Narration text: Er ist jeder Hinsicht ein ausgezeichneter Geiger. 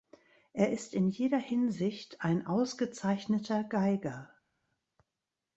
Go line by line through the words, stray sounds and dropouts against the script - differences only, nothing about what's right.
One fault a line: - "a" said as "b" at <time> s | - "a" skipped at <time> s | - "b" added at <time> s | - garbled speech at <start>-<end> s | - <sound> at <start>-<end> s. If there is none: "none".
- "in" added at 0.9 s